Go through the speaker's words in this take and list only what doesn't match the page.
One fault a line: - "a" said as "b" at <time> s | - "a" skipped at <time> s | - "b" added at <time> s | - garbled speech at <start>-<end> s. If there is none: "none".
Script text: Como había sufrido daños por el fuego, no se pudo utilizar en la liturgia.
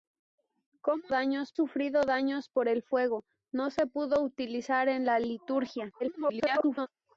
- "había" said as "daños" at 1.1 s
- garbled speech at 6.0-6.9 s